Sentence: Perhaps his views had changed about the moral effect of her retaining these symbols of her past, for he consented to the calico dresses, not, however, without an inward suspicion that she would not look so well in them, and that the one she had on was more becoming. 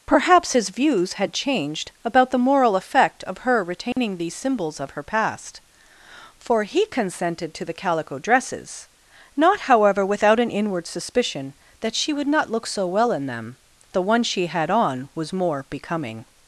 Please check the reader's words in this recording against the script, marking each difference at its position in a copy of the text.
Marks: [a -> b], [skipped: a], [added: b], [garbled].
Perhaps his views had changed about the moral effect of her retaining these symbols of her past, for he consented to the calico dresses, not, however, without an inward suspicion that she would not look so well in them, [skipped: and that] the one she had on was more becoming.